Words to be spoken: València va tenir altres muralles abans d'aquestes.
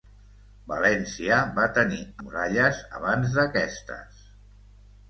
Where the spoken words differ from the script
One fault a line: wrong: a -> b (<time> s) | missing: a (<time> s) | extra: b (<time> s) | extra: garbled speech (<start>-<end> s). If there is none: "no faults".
missing: altres (2.0 s)